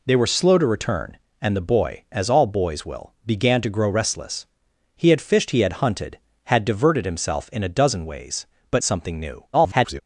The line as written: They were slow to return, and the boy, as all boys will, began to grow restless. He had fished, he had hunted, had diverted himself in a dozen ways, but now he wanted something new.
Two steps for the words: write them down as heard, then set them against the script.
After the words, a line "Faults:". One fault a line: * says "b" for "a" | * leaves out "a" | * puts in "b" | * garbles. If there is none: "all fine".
They were slow to return, and the boy, as all boys will, began to grow restless. He had fished, he had hunted, had diverted himself in a dozen ways, but something new. [garbled]
Faults:
* leaves out "now he wanted"
* garbles